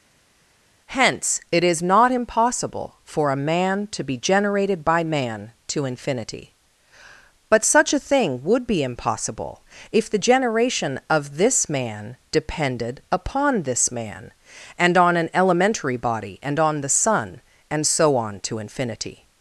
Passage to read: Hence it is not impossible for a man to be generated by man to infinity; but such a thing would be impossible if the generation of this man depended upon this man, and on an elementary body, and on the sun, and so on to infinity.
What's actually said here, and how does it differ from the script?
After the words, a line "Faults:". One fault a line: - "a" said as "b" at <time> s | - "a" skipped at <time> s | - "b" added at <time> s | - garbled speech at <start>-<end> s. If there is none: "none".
Hence it is not impossible for a man to be generated by man to infinity; but such a thing would be impossible if the generation of this man depended upon this man, and on an elementary body, and on the sun, and so on to infinity.
Faults:
none